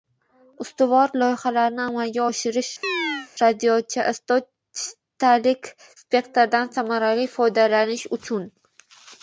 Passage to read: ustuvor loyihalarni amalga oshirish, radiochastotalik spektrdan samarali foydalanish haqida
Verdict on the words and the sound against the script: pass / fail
fail